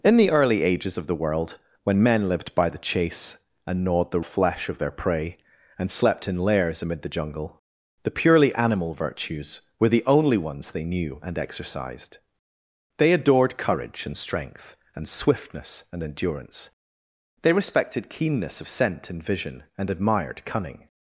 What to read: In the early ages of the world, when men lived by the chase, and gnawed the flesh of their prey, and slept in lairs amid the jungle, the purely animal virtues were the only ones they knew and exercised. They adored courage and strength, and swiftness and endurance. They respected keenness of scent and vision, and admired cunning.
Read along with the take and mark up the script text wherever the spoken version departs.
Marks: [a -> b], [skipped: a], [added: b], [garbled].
In the early ages of the world, when men lived by the chase, and gnawed the flesh of their prey, and slept in lairs amid the jungle, the purely animal virtues were the only ones they knew and exercised. They adored courage and strength, and swiftness and endurance. They respected keenness of scent and vision, and admired cunning.